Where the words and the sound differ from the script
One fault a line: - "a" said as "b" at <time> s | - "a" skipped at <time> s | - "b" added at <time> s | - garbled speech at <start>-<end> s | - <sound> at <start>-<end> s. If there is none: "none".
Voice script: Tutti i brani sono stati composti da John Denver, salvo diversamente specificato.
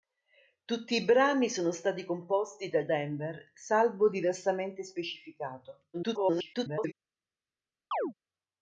- "John" skipped at 2.9 s
- garbled speech at 5.9-6.9 s
- chirp at 7.9-8.1 s